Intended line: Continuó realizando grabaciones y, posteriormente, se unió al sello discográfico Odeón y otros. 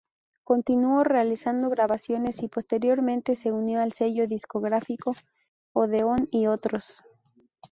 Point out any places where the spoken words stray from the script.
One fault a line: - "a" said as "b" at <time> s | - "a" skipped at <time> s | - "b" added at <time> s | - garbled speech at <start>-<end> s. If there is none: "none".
none